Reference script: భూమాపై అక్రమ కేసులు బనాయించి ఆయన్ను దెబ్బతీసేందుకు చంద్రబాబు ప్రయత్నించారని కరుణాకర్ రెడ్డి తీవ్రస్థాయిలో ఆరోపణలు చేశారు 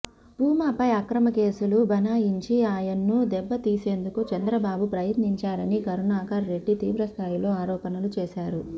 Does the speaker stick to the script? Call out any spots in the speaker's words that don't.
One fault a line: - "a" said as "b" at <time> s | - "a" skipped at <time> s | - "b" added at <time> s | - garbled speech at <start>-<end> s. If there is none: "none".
none